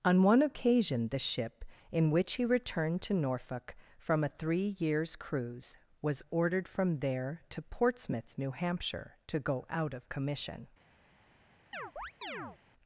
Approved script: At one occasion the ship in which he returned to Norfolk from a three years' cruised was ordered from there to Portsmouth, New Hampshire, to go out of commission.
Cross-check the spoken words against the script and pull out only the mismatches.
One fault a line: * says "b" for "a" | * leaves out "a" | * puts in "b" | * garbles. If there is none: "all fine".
* says "On" for "At"
* says "cruise" for "cruised"